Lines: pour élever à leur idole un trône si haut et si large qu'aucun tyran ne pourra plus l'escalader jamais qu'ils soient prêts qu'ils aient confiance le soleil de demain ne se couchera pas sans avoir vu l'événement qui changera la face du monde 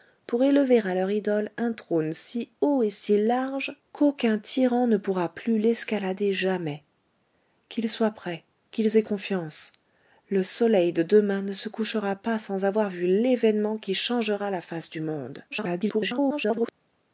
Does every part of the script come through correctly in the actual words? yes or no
no